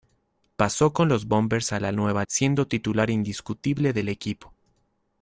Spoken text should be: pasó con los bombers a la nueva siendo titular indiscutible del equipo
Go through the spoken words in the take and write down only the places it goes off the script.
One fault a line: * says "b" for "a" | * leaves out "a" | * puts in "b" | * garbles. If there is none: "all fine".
all fine